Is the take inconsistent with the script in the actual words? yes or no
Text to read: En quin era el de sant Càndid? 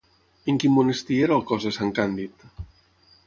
yes